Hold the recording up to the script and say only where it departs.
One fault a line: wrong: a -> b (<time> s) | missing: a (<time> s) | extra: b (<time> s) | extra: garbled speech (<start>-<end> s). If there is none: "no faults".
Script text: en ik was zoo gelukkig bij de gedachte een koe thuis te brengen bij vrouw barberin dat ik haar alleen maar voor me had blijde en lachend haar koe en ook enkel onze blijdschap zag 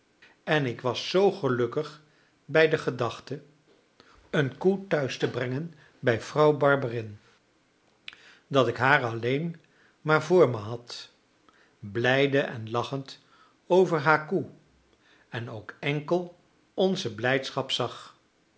extra: over (13.7 s)